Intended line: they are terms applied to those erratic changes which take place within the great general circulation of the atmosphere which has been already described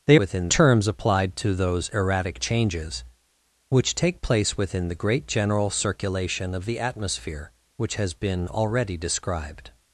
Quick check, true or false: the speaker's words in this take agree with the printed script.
false